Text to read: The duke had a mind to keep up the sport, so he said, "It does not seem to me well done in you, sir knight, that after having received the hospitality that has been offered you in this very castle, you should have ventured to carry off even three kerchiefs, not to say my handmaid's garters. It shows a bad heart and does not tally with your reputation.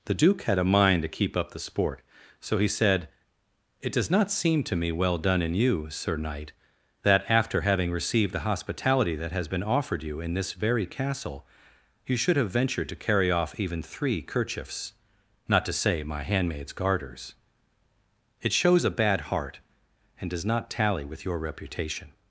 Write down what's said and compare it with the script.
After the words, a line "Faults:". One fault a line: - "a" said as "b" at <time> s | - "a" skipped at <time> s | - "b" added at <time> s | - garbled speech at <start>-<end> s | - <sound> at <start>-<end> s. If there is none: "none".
The duke had a mind to keep up the sport, so he said, "It does not seem to me well done in you, sir knight, that after having received the hospitality that has been offered you in this very castle, you should have ventured to carry off even three kerchiefs, not to say my handmaid's garters. It shows a bad heart and does not tally with your reputation.
Faults:
none